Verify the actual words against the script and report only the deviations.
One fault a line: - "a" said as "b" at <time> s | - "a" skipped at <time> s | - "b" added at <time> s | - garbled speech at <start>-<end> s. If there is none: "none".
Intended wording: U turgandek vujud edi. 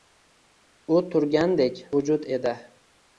none